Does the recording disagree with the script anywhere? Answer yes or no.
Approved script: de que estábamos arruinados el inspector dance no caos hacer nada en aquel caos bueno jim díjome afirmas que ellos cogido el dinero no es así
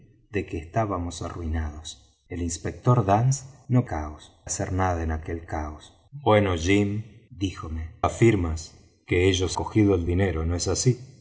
no